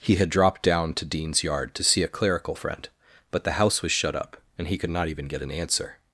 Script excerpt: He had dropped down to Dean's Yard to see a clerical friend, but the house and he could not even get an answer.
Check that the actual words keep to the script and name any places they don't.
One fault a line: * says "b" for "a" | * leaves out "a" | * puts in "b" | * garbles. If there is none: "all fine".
* puts in "was shut up"